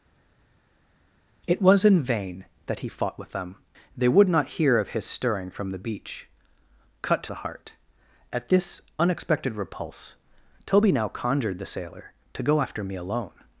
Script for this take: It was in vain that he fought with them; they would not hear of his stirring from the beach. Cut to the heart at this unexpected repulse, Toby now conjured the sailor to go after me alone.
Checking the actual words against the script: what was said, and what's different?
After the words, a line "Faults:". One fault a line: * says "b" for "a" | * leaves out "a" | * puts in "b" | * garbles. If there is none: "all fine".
It was in vain that he fought with them; they would not hear of his stirring from the beach. Cut to the heart at this unexpected repulse, Toby now conjured the sailor to go after me alone.
Faults:
all fine